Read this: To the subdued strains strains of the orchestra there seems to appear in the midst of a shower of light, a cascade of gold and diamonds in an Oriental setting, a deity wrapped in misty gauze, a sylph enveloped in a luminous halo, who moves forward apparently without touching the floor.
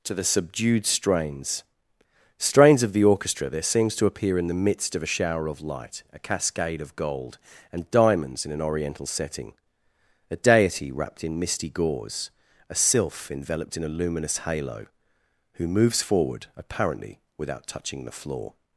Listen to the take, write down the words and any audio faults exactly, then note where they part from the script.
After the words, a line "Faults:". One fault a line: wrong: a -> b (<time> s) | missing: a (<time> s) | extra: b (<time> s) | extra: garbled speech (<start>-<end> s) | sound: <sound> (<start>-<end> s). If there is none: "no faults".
To the subdued strains strains of the orchestra there seems to appear in the midst of a shower of light, a cascade of gold and diamonds in an Oriental setting, a deity wrapped in misty gauze, a sylph enveloped in a luminous halo, who moves forward apparently without touching the floor.
Faults:
no faults